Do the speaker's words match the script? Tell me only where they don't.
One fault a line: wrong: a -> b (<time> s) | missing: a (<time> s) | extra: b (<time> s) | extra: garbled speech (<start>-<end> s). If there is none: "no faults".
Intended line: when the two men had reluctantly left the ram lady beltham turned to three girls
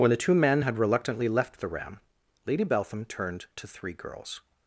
no faults